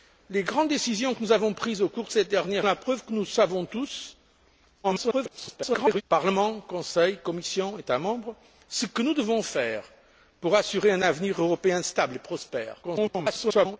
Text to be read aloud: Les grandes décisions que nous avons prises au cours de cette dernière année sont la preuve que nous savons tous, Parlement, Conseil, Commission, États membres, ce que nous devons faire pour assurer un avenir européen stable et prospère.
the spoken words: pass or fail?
fail